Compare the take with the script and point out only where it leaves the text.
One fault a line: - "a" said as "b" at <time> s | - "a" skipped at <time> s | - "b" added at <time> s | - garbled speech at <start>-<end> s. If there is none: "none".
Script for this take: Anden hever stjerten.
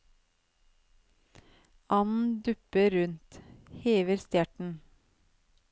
- "dupper rundt" added at 2.4 s